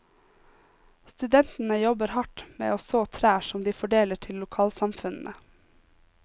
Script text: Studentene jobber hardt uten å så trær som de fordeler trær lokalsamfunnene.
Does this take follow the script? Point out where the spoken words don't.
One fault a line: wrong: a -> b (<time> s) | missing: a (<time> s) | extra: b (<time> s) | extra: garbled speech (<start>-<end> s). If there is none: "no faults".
wrong: uten -> med (2.6 s)
wrong: trær -> til (4.3 s)